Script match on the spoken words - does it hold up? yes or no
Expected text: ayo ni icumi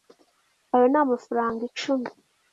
no